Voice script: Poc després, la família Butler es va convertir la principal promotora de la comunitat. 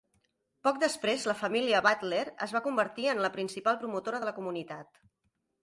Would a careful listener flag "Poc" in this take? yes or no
no